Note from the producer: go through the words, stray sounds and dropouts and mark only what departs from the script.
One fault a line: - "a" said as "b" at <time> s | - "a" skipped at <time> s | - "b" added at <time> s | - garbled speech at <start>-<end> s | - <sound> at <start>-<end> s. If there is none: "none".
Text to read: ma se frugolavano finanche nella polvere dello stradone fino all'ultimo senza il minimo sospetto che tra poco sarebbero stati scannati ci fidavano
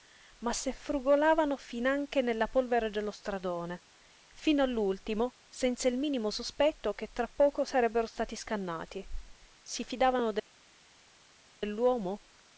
- "ci" said as "si" at 9.6 s